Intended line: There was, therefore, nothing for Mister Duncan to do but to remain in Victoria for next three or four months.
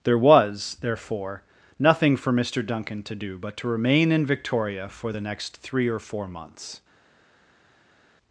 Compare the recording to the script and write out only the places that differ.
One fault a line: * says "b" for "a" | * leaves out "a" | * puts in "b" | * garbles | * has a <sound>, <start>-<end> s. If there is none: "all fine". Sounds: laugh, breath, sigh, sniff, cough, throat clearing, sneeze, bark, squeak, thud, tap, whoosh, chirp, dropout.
* puts in "the"